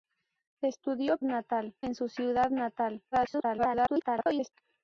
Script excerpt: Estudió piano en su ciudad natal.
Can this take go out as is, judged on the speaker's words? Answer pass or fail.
fail